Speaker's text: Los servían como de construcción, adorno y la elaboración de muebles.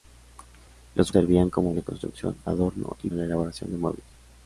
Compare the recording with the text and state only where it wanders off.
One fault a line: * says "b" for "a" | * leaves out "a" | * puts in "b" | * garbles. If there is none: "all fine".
all fine